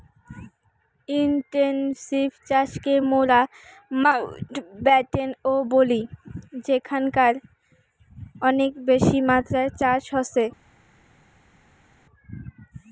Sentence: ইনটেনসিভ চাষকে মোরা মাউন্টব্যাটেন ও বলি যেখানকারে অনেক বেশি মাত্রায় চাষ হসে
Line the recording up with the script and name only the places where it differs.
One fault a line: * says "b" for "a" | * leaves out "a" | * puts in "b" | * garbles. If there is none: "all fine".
all fine